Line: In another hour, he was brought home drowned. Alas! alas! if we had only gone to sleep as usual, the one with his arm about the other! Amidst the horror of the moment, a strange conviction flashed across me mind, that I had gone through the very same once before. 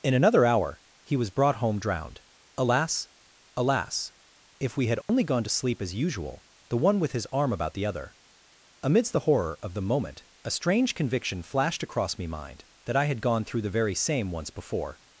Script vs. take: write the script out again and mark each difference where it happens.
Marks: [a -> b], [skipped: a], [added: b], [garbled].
In another hour, he was brought home drowned. Alas! alas! if we had only gone to sleep as usual, the one with his arm about the other! Amidst the horror of the moment, a strange conviction flashed across me mind, that I had gone through the very same once before.